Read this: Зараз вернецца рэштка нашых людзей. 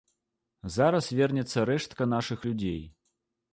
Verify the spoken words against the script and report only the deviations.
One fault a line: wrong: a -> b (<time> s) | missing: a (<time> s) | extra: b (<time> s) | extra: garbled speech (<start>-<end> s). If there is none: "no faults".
no faults